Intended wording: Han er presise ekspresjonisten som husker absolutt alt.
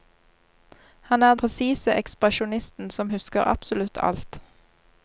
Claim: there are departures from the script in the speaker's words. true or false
false